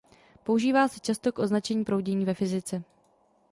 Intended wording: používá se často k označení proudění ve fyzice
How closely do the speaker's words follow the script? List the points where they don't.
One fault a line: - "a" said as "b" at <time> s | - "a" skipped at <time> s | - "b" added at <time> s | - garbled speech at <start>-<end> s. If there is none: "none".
none